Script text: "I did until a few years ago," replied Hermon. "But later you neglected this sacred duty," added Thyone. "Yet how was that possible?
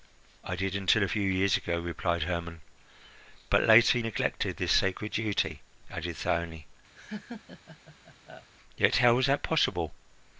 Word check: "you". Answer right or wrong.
wrong